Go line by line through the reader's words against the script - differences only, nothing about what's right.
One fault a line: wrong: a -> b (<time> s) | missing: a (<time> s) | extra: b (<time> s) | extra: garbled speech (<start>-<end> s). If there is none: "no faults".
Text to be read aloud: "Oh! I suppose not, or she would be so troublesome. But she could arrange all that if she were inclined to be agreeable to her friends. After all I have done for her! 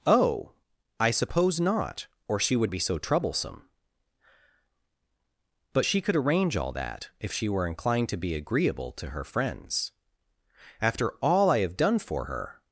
no faults